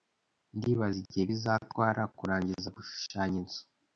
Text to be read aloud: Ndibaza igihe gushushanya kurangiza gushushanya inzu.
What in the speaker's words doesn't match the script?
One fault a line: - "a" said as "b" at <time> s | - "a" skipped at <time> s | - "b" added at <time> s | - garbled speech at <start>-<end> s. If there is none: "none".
- "gushushanya" said as "bizatwara" at 1.3 s